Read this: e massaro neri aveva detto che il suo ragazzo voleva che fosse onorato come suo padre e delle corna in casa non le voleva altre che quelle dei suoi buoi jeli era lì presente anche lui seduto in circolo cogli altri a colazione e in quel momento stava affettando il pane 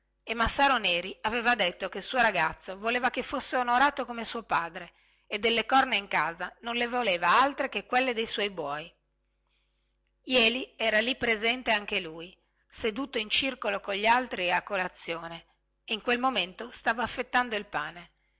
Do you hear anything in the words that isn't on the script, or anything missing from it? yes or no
no